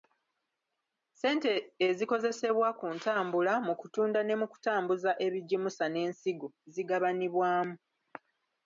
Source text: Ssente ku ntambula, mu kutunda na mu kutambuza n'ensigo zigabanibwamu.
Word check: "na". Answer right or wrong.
wrong